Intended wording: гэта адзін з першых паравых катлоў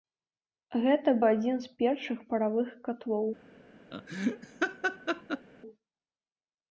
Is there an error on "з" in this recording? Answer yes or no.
no